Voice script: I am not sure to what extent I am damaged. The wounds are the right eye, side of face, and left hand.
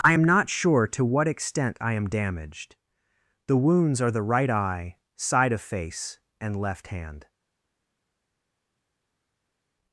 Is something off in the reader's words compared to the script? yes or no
no